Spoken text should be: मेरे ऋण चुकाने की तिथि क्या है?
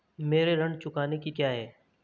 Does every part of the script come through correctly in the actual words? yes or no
no